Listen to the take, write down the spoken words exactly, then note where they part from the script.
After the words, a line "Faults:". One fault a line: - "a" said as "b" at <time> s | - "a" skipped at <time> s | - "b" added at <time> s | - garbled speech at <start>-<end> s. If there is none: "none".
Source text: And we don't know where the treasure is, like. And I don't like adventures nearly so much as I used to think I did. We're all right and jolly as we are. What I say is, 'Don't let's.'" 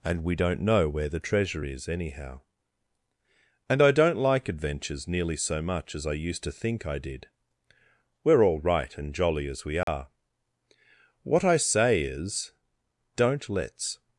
And we don't know where the treasure is, anyhow. And I don't like adventures nearly so much as I used to think I did. We're all right and jolly as we are. What I say is, 'Don't let's.'"
Faults:
- "like" said as "anyhow" at 1.9 s